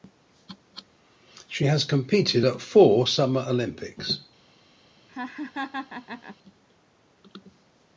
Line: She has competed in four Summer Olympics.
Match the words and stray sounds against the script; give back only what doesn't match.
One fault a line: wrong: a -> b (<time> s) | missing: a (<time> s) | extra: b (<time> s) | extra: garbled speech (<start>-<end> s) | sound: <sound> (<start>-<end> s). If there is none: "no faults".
wrong: in -> at (2.4 s)
sound: laugh (5.1-6.4 s)